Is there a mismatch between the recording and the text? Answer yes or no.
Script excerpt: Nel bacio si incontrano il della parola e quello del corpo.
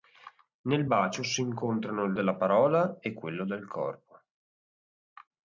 no